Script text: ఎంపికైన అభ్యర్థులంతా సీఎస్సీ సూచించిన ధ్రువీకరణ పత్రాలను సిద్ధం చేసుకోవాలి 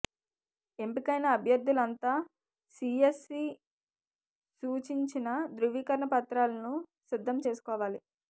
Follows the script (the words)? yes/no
yes